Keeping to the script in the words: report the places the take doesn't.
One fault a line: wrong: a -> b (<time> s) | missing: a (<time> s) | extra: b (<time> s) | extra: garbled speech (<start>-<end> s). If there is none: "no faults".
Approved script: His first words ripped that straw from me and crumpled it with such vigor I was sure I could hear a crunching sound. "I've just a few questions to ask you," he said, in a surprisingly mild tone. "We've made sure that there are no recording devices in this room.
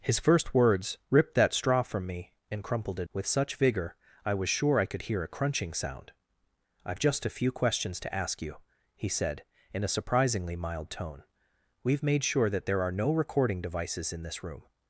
no faults